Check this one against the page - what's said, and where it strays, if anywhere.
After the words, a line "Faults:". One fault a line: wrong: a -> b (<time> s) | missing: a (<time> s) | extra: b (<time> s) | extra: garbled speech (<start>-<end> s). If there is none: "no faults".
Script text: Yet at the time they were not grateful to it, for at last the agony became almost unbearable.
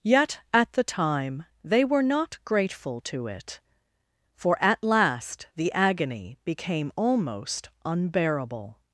Yet at the time they were not grateful to it, for at last the agony became almost unbearable.
Faults:
no faults